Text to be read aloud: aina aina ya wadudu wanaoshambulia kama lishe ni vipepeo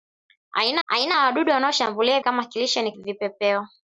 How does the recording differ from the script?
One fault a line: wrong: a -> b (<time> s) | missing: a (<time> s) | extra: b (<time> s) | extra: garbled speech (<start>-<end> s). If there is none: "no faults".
no faults